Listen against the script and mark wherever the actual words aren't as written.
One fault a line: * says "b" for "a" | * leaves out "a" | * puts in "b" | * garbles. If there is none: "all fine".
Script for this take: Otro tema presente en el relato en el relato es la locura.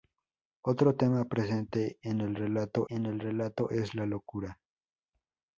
all fine